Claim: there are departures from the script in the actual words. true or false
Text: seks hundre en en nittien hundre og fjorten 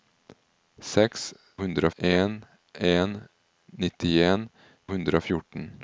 false